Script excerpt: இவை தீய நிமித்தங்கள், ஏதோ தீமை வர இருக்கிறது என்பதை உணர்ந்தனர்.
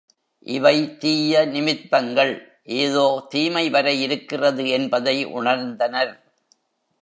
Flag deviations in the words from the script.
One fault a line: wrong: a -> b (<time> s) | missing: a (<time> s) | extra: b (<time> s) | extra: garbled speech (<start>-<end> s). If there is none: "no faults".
no faults